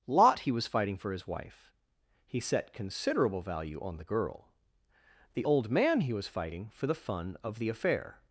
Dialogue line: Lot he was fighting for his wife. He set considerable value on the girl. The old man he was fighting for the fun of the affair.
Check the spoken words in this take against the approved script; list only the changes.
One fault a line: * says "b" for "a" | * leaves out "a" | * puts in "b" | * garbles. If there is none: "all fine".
all fine